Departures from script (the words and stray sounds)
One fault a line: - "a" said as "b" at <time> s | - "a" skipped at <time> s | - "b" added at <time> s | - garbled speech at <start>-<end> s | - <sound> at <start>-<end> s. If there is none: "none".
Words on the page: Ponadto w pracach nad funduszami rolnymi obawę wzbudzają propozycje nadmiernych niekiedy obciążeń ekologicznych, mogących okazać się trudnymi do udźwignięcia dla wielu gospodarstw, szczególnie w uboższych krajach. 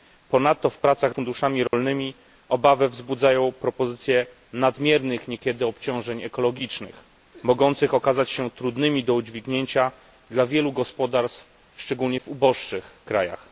- "nad" skipped at 1.1 s
- dropout at 1.7-1.7 s